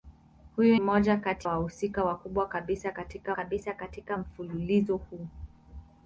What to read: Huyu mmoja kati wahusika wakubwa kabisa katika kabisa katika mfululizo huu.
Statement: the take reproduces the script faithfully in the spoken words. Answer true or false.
true